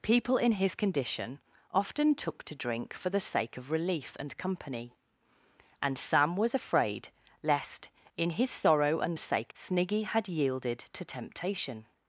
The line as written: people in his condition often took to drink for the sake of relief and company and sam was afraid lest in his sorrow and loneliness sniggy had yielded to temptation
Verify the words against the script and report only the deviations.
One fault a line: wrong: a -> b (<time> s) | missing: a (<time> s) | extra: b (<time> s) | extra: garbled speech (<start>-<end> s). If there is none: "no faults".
wrong: loneliness -> sake (9.2 s)